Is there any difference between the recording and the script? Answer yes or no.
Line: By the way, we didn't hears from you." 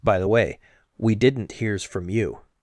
no